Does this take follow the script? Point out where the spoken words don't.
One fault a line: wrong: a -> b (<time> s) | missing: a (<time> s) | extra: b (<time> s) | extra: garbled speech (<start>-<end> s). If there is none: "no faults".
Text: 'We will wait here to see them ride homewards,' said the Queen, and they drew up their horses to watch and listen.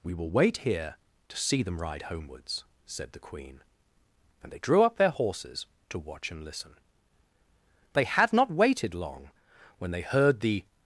extra: They had not waited long when they heard the (7.9 s)